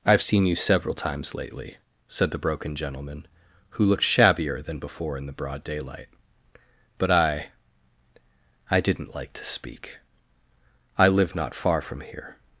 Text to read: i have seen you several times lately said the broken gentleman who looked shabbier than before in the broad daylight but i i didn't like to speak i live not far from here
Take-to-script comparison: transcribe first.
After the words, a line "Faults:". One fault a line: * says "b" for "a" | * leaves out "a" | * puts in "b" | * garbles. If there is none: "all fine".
i have seen you several times lately said the broken gentleman who looked shabbier than before in the broad daylight but i i didn't like to speak i live not far from here
Faults:
all fine